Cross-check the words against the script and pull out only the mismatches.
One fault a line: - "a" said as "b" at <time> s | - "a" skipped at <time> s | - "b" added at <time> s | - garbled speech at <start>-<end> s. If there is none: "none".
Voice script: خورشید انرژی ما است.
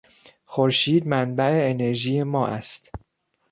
- "منبع" added at 1.1 s